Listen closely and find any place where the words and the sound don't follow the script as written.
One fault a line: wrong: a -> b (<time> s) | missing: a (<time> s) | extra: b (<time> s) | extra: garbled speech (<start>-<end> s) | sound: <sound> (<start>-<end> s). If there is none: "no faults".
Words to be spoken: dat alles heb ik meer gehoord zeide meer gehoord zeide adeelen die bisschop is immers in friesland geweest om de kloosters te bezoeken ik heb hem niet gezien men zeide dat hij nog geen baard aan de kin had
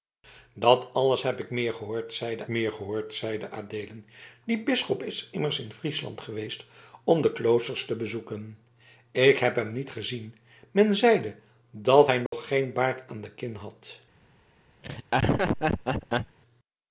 sound: dropout (12.3-12.3 s)
sound: laugh (14.8-16.4 s)